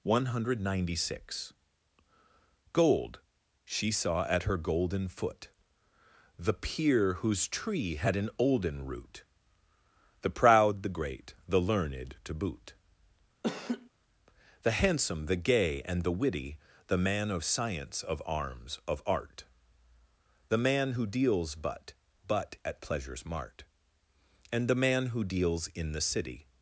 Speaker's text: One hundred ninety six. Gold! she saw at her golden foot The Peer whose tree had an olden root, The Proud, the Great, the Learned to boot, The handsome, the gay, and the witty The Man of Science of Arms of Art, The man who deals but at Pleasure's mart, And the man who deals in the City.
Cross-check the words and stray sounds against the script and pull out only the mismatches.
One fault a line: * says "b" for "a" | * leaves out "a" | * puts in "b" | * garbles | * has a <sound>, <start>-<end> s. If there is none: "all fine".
* has a laugh, 13.4-13.9 s
* puts in "but"